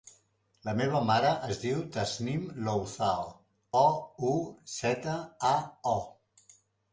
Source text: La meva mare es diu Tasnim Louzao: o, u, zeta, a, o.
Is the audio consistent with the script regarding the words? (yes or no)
yes